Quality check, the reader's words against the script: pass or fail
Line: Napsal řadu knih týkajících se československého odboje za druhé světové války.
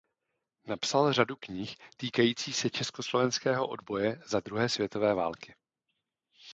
pass